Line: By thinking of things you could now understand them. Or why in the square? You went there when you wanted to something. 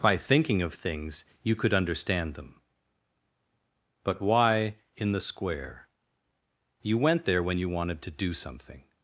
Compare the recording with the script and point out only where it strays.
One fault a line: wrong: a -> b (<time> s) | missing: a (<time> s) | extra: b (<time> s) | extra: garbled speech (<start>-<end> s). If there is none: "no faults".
missing: now (1.8 s)
wrong: Or -> But (4.0 s)
extra: do (8.1 s)